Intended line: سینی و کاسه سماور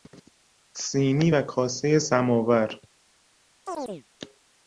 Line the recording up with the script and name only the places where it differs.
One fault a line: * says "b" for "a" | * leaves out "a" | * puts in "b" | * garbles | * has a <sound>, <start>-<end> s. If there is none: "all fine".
* has a chirp, 3.7-4.0 s